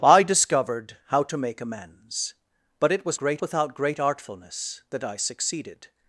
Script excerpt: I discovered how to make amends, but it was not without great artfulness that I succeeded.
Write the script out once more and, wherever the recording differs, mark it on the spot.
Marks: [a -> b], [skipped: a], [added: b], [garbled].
I discovered how to make amends, but it was [not -> great] without great artfulness that I succeeded.